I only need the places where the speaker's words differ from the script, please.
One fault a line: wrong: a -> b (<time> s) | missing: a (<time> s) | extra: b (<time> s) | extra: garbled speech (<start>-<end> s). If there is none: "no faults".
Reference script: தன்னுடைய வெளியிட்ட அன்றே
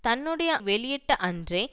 no faults